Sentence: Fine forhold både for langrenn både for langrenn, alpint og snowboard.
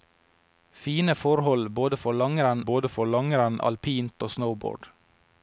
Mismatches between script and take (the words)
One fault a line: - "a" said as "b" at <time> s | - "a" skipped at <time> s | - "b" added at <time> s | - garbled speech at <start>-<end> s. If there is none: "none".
none